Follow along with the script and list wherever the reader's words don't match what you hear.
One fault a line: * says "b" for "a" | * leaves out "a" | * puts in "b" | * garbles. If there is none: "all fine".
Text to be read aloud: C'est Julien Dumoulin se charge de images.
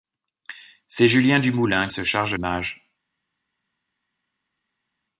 all fine